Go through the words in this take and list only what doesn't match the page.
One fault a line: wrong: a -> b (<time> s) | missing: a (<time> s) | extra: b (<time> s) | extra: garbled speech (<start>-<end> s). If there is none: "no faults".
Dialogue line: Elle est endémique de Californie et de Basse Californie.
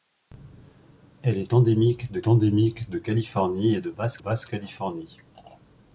extra: endémique de (2.3 s)
extra: Basse (4.2 s)